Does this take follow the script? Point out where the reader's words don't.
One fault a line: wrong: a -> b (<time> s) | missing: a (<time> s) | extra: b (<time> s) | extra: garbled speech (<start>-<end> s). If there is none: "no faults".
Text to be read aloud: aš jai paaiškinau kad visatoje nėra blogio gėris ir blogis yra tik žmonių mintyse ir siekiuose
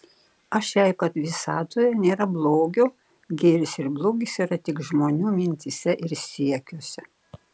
missing: paaiškinau (0.9 s)